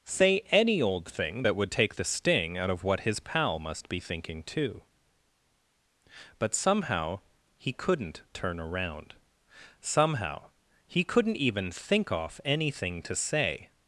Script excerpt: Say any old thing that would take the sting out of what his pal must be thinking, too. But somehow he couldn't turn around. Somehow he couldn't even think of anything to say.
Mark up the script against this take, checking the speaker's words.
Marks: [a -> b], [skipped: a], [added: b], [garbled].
Say any old thing that would take the sting out of what his pal must be thinking, too. But somehow he couldn't turn around. Somehow he couldn't even think [of -> off] anything to say.